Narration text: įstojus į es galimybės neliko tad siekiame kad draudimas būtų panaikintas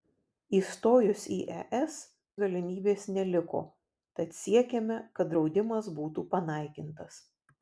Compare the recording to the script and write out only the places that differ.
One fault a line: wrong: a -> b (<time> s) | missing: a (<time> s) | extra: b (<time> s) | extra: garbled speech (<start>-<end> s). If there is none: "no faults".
no faults